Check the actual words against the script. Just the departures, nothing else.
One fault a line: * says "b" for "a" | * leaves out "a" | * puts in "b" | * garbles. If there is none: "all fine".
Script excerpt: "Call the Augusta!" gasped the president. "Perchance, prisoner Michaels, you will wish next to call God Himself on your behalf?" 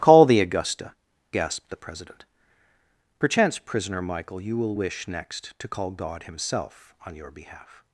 * says "Michael" for "Michaels"